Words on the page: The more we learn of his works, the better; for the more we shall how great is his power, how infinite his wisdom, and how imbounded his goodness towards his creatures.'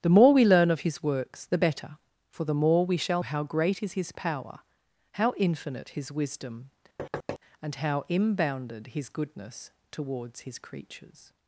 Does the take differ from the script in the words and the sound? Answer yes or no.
yes